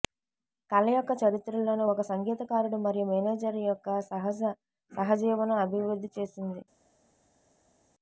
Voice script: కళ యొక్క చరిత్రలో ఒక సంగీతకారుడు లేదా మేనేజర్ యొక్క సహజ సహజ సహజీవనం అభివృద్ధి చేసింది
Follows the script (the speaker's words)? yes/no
no